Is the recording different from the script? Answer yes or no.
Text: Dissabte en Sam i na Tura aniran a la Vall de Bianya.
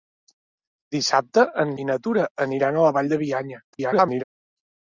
yes